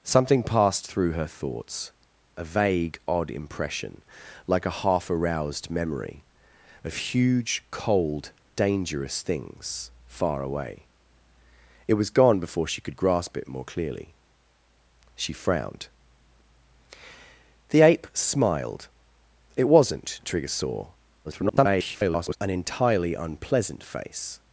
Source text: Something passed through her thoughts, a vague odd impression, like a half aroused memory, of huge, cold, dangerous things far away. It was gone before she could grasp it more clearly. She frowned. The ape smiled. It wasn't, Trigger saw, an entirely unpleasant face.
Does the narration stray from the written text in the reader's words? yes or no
yes